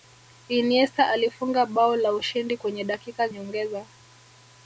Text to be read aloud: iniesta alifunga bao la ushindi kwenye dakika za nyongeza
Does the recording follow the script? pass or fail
fail